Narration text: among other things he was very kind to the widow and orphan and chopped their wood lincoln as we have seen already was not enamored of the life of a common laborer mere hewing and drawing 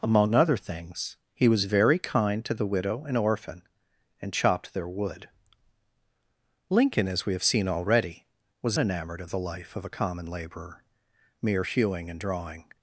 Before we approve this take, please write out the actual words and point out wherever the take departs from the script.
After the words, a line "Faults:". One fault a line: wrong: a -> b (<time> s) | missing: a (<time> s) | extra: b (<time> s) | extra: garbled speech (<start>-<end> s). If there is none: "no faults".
among other things he was very kind to the widow and orphan and chopped their wood lincoln as we have seen already was enamored of the life of a common laborer mere hewing and drawing
Faults:
missing: not (8.8 s)